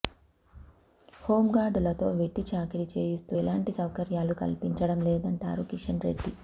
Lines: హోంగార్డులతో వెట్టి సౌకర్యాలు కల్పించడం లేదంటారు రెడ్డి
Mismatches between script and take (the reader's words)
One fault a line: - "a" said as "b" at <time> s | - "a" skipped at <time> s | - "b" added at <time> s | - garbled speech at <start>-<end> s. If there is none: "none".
- "చాకిరీ చేయిస్తూ ఎలాంటి" added at 2.5 s
- "కిషన్" added at 5.7 s